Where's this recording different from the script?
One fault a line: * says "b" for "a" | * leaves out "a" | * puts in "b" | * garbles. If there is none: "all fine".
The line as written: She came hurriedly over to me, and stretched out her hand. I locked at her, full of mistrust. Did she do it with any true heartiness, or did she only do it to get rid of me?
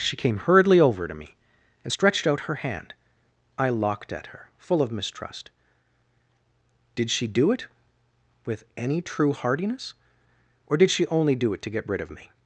all fine